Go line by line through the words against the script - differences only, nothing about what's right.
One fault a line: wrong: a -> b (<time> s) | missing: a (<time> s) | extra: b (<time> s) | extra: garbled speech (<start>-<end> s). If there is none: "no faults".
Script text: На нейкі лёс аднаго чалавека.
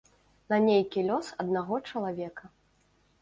no faults